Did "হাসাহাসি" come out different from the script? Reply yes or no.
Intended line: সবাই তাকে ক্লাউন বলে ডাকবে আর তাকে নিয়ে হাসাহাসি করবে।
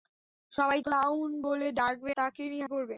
yes